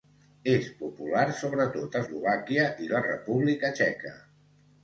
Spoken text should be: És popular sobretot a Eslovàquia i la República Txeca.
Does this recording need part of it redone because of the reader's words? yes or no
no